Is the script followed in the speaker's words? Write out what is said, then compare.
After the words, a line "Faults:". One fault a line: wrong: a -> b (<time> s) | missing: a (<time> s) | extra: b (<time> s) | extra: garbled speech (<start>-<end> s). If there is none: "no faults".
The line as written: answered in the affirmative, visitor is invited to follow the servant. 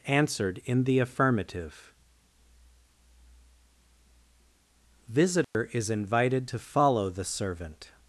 answered in the affirmative, visitor is invited to follow the servant.
Faults:
no faults